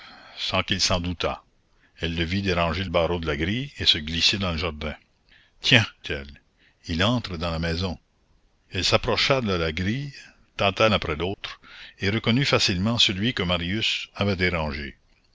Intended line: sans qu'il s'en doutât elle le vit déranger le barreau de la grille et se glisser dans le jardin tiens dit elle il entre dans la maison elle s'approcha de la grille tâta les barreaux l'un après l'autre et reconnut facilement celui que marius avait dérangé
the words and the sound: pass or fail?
fail